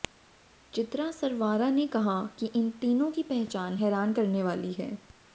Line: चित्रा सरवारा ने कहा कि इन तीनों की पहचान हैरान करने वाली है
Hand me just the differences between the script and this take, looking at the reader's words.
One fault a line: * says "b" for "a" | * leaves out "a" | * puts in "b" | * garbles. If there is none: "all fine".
all fine